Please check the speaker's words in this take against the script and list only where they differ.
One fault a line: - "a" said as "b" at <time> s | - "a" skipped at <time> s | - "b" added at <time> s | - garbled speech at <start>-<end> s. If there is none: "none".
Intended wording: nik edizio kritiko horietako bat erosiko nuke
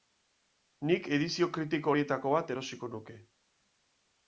none